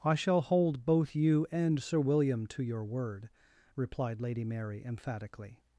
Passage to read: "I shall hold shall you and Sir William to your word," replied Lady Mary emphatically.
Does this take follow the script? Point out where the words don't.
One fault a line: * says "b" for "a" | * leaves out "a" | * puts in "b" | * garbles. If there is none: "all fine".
* says "both" for "shall"